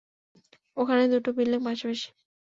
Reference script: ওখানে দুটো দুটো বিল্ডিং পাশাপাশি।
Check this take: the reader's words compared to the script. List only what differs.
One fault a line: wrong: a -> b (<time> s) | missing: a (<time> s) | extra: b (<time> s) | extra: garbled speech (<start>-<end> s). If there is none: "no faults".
missing: দুটো (1.3 s)